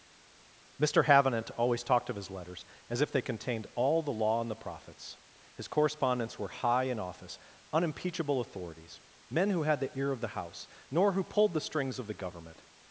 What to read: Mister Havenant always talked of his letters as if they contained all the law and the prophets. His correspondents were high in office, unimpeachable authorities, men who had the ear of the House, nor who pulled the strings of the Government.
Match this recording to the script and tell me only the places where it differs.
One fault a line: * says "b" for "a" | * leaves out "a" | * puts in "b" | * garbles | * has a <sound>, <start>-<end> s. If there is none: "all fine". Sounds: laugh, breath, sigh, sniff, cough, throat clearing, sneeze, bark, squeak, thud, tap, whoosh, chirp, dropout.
all fine